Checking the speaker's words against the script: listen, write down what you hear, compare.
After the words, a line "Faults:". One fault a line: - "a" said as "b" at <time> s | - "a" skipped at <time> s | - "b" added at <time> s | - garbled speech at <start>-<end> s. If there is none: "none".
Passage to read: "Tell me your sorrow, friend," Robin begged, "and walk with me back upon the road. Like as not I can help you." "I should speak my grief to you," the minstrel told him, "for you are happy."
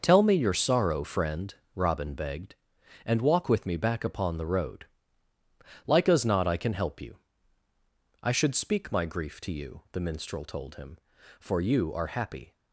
"Tell me your sorrow, friend," Robin begged, "and walk with me back upon the road. Like as not I can help you." "I should speak my grief to you," the minstrel told him, "for you are happy."
Faults:
none